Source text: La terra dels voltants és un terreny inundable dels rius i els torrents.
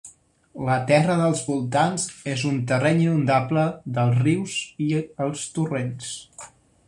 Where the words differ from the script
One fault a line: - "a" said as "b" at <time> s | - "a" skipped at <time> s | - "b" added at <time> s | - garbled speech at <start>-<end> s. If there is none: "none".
none